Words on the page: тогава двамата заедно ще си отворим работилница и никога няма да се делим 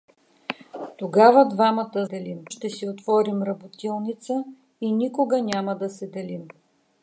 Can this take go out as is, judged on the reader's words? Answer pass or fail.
fail